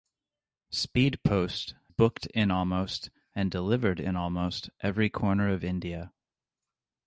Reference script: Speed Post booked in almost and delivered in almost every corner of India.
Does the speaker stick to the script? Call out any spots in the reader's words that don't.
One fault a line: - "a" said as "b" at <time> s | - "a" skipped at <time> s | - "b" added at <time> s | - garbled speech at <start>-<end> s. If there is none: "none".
none